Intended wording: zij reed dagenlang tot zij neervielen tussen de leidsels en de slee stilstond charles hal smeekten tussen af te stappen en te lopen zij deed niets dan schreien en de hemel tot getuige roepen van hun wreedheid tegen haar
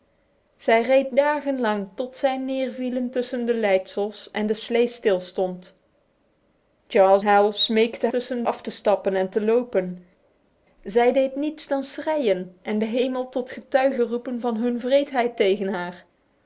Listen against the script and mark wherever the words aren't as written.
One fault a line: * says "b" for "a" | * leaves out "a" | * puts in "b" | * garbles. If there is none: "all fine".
all fine